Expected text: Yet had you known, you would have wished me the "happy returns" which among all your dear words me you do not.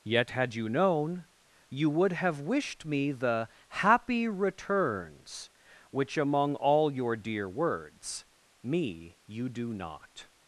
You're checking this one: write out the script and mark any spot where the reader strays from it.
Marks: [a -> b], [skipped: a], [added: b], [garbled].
Yet had you known, you would have wished me the "happy returns" which among all your dear words me you do not.